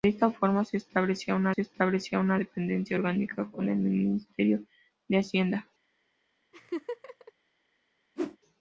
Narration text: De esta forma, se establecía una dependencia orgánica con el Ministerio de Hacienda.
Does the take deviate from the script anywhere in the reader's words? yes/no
yes